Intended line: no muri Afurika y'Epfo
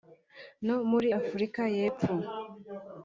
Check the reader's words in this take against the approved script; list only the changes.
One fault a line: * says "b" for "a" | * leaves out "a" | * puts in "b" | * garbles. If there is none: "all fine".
all fine